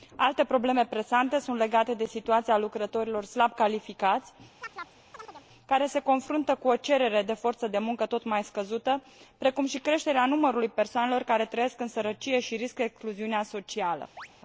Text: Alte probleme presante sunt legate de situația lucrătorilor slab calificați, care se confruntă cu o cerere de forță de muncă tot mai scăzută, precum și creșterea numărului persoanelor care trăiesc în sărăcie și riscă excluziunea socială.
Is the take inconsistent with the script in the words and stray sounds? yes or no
yes